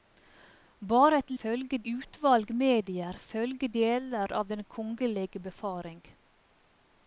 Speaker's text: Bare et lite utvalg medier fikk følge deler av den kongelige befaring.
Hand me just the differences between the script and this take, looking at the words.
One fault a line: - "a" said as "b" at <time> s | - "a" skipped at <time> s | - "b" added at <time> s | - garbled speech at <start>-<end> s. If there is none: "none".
- "lite" said as "følge" at 1.4 s
- "fikk" skipped at 3.2 s